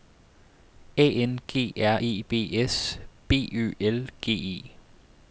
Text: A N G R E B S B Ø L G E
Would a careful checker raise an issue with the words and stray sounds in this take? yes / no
no